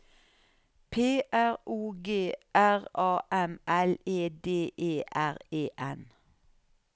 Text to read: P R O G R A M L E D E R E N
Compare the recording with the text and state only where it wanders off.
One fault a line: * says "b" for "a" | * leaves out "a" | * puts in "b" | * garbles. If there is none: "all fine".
all fine